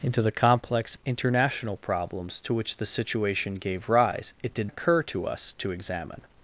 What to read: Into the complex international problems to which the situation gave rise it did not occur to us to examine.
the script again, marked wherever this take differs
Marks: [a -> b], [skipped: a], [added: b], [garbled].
Into the complex international problems to which the situation gave rise it did [skipped: not] occur to us to examine.